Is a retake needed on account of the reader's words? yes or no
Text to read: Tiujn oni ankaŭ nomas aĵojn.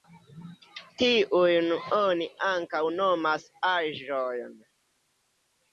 no